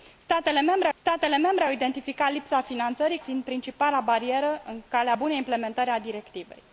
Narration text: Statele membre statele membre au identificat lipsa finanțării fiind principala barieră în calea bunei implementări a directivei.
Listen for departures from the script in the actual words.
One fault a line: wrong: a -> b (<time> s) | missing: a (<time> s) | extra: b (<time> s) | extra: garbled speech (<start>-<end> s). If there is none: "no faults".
no faults